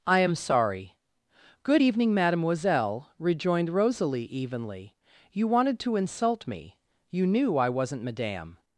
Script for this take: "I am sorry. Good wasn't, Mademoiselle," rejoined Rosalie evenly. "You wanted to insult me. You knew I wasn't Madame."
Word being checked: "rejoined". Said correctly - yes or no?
yes